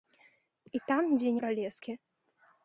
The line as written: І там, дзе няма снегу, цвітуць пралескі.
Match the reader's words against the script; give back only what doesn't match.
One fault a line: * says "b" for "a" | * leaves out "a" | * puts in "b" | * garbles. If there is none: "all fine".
* leaves out "няма снегу цвітуць"